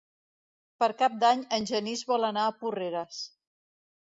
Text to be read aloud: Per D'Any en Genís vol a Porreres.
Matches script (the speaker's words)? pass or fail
fail